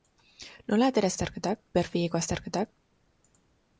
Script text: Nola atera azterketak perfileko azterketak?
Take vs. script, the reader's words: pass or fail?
pass